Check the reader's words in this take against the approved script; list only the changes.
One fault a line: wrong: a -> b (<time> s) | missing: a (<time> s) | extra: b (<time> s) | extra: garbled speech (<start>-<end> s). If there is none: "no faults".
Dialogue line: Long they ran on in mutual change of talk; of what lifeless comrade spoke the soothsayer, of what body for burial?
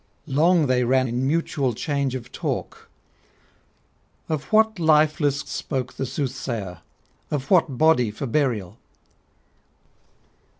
missing: on (1.1 s)
missing: comrade (5.4 s)